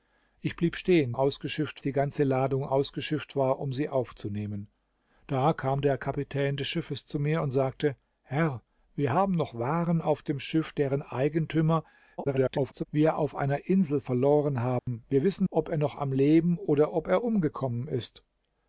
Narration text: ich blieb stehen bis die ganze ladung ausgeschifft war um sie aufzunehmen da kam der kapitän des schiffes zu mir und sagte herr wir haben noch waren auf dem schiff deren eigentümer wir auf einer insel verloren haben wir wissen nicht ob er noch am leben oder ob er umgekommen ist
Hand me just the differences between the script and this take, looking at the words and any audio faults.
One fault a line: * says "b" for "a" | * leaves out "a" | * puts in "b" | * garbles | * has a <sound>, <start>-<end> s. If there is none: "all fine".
* says "ausgeschifft" for "bis"
* garbles
* has a dropout, 14.8-14.9 s
* leaves out "nicht"